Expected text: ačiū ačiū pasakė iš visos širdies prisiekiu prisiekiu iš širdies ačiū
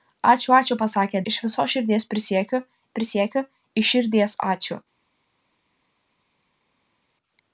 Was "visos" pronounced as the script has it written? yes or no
yes